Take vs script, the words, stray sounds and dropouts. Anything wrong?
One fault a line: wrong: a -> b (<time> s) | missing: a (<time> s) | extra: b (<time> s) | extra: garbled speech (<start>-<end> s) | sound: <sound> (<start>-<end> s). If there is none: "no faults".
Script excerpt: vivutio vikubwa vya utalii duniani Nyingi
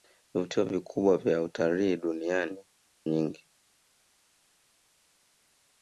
no faults